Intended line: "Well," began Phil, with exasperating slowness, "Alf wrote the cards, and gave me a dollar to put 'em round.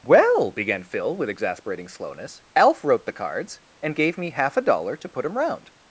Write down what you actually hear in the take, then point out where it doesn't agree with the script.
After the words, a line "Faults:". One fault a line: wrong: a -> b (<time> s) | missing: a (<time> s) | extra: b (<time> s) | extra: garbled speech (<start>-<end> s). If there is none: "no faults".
"Well," began Phil, with exasperating slowness, "Alf wrote the cards, and gave me half a dollar to put 'em round.
Faults:
extra: half (4.3 s)